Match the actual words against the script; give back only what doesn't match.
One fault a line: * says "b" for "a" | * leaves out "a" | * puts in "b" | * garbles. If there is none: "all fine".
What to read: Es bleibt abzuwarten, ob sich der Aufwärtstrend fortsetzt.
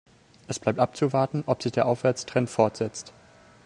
all fine